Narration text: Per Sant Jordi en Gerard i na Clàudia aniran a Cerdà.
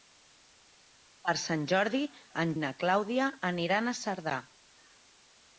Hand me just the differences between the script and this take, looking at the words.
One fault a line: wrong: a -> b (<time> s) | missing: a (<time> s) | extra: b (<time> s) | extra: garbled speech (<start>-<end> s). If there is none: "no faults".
missing: Gerard (2.5 s)